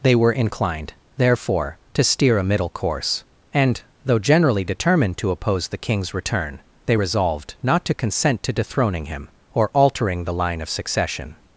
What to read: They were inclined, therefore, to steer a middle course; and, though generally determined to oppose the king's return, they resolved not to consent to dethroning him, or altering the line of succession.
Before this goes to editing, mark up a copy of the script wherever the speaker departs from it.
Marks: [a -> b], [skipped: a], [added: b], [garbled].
They were inclined, therefore, to steer a middle course; and, though generally determined to oppose the king's return, they resolved not to consent to dethroning him, or altering the line of succession.